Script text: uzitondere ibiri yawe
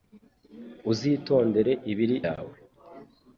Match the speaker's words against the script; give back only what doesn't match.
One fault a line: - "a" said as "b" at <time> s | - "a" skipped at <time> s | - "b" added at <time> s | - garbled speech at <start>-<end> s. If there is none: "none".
none